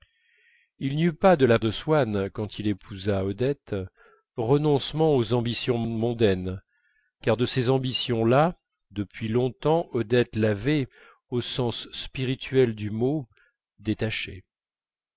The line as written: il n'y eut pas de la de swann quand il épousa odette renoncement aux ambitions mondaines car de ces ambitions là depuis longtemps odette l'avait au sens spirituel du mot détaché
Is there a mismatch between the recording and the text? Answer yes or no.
no